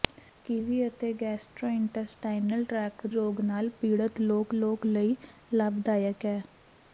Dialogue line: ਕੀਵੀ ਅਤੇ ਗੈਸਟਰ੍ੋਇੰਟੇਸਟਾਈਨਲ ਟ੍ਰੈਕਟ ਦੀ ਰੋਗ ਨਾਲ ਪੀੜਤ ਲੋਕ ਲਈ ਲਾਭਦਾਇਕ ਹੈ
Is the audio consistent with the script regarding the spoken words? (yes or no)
no